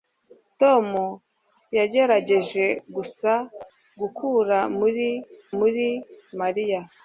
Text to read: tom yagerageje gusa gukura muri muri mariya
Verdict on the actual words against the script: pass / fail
pass